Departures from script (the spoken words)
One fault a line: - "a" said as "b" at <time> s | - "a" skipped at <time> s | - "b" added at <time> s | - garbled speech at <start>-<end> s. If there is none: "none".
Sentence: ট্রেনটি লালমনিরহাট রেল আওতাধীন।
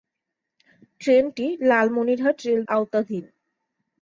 none